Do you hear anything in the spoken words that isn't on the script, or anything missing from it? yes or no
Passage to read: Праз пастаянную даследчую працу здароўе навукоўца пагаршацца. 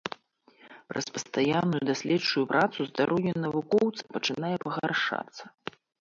yes